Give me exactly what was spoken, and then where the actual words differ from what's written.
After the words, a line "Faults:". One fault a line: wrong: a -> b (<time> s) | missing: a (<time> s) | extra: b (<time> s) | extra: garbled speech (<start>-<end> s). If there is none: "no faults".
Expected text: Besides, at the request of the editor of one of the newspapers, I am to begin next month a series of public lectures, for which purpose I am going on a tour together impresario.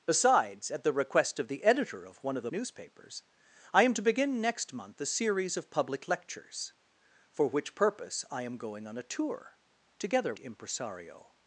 Besides, at the request of the editor of one of the newspapers, I am to begin next month a series of public lectures, for which purpose I am going on a tour together impresario.
Faults:
no faults